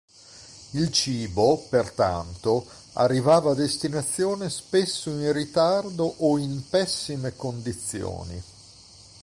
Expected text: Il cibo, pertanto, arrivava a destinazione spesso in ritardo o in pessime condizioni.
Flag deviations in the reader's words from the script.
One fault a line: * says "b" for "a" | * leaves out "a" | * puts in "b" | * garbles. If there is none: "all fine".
all fine